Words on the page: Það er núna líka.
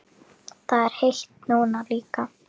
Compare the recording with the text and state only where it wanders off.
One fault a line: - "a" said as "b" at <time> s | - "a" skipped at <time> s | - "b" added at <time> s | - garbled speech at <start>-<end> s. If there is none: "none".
- "heitt" added at 1.0 s